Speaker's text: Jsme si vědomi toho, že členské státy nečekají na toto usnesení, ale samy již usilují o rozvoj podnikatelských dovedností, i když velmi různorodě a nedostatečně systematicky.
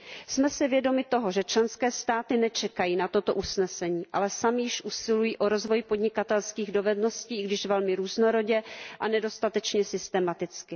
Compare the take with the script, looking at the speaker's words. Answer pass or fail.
pass